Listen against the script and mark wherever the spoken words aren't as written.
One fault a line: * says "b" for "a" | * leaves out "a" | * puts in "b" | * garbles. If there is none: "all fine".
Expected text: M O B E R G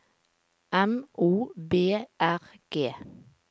* leaves out "E"